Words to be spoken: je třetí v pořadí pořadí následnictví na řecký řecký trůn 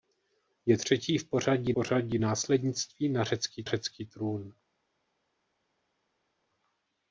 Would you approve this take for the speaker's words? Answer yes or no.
yes